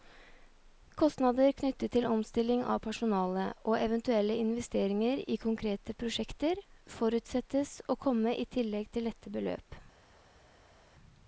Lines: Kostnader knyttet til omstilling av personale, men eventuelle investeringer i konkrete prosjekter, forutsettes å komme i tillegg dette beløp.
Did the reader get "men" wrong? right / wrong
wrong